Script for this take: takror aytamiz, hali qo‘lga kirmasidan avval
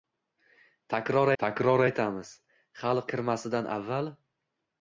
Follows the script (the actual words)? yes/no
no